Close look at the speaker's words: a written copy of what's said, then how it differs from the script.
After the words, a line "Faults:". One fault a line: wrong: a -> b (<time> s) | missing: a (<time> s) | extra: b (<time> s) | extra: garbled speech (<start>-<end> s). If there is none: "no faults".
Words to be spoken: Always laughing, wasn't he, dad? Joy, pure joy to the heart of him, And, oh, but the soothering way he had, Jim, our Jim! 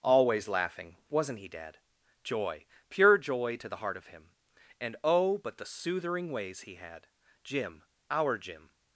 Always laughing, wasn't he, dad? Joy, pure joy to the heart of him, And, oh, but the soothering ways he had, Jim, our Jim!
Faults:
wrong: way -> ways (6.3 s)